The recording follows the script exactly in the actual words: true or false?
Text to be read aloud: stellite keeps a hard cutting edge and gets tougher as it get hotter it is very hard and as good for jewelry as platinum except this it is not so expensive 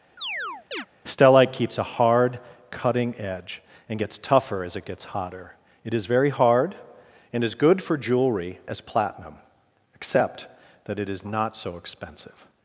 false